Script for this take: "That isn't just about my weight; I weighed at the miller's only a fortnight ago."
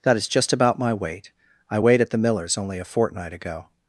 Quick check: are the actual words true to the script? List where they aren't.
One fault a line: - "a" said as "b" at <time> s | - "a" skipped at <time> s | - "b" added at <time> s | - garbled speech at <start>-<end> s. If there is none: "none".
- "isn't" said as "is" at 0.1 s